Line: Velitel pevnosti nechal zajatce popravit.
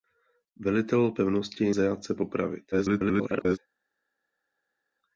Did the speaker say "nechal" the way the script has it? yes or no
no